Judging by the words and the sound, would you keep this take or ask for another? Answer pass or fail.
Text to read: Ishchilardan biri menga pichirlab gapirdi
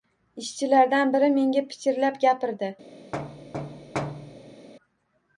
fail